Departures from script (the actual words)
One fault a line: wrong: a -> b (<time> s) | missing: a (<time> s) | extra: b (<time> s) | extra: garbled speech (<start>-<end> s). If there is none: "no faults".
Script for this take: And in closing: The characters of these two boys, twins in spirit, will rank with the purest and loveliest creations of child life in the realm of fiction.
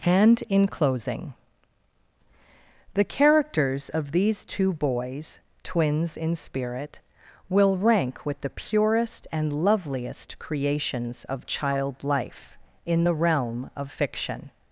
no faults